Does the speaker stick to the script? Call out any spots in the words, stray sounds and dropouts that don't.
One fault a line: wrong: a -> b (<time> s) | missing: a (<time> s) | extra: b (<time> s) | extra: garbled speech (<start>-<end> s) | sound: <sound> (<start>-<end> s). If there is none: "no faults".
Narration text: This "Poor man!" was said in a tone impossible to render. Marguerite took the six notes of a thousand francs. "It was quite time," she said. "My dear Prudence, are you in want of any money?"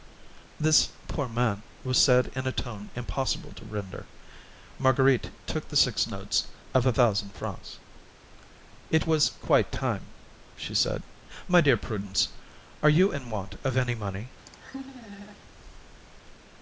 sound: laugh (14.5-15.4 s)